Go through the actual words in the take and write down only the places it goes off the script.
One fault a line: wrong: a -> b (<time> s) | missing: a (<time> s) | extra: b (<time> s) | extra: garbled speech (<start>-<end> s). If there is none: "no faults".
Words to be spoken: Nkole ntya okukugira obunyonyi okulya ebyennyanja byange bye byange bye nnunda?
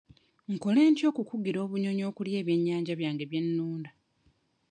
missing: byange bye (3.4 s)